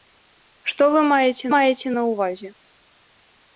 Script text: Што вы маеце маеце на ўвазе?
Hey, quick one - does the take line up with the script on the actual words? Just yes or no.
yes